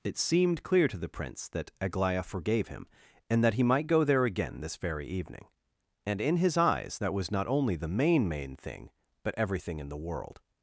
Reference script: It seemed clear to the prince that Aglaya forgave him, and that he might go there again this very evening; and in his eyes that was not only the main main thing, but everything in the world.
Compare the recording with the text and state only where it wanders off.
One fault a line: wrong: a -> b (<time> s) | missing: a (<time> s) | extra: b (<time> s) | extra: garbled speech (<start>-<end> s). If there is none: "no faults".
no faults